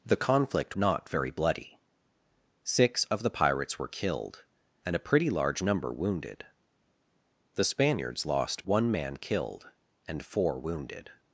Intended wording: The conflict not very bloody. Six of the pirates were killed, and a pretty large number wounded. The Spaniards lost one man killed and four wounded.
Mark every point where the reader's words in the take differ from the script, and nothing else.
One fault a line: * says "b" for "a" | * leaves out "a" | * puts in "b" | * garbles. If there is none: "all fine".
all fine